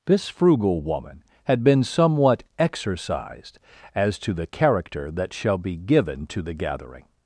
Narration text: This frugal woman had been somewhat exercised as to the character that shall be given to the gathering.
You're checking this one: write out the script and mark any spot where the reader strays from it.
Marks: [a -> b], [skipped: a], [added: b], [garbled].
This frugal woman had been somewhat exercised as to the character that shall be given to the gathering.